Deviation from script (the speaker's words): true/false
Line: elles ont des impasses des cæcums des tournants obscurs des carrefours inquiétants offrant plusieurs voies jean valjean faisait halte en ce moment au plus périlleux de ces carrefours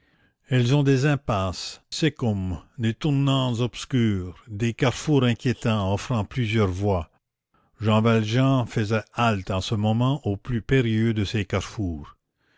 true